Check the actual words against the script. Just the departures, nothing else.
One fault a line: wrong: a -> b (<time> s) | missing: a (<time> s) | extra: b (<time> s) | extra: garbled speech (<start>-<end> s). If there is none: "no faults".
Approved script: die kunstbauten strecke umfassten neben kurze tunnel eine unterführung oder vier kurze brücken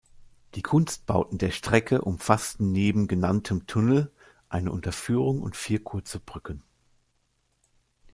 extra: der (1.4 s)
wrong: kurze -> genanntem (3.1 s)
wrong: oder -> und (5.4 s)